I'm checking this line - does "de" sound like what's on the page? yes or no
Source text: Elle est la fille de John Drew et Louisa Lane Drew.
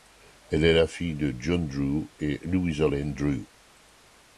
yes